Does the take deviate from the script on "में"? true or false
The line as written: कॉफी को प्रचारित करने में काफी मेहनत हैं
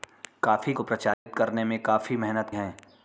false